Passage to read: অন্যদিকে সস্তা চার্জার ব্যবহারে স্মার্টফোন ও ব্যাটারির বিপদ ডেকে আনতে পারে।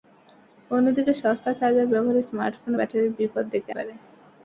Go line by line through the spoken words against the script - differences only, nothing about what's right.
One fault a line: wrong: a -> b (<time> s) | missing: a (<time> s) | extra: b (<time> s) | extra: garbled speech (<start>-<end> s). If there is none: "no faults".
missing: ও (2.7 s)
missing: আনতে (3.7 s)